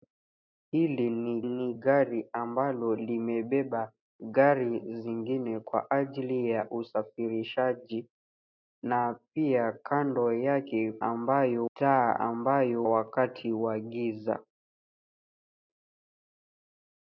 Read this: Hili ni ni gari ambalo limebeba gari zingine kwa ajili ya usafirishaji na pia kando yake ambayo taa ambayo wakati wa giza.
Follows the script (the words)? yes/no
yes